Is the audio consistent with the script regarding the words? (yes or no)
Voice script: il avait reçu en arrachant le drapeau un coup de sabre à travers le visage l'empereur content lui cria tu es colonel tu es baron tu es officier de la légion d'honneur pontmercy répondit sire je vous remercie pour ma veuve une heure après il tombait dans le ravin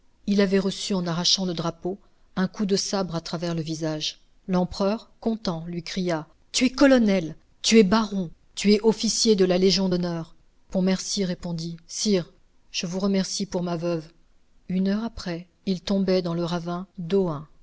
yes